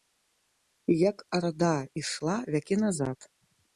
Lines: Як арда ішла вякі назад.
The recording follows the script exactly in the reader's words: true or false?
true